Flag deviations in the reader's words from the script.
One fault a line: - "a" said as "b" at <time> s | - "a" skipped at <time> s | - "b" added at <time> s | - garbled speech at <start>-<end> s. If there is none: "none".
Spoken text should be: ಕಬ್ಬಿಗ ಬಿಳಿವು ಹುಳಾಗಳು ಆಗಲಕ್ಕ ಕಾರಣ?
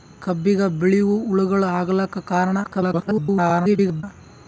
- garbled speech at 2.6-4.0 s